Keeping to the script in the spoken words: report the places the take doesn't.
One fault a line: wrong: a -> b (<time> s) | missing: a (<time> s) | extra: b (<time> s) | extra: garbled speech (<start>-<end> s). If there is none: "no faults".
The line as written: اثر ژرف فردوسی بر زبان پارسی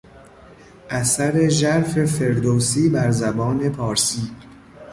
no faults